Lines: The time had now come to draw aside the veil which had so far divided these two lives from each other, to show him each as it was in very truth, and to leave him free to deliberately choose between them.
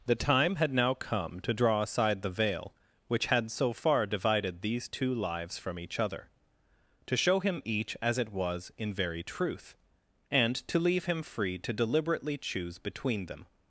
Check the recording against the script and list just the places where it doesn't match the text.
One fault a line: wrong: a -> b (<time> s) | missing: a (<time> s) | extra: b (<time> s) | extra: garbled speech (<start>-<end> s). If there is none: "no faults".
no faults